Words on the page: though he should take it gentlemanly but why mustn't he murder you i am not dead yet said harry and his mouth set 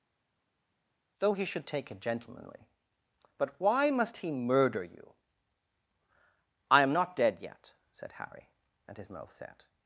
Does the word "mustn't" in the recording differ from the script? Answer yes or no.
yes